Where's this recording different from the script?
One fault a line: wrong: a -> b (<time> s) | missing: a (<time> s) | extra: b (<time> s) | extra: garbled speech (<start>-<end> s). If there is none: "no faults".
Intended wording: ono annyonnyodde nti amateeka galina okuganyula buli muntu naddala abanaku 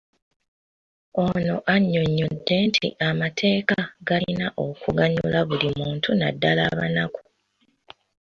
no faults